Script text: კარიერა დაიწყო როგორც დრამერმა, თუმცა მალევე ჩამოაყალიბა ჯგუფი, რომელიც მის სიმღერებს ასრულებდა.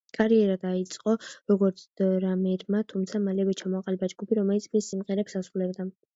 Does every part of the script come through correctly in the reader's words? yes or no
yes